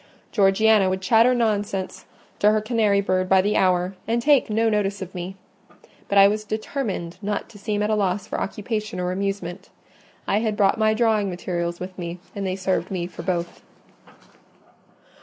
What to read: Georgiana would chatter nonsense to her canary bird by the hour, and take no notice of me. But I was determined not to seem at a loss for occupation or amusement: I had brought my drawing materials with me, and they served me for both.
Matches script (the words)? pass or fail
pass